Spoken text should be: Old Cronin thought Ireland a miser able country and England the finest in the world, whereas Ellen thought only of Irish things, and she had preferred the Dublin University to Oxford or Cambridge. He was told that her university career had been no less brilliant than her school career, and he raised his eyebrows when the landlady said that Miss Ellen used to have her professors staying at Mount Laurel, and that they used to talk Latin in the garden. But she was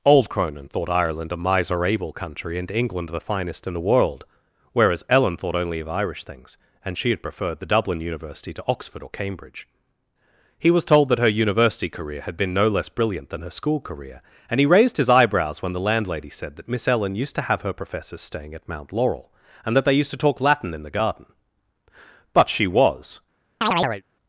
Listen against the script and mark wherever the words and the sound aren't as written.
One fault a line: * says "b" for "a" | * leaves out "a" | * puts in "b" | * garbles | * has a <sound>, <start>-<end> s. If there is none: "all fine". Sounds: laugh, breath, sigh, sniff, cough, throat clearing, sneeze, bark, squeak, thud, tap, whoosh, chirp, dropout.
* has a chirp, 23.6-24.0 s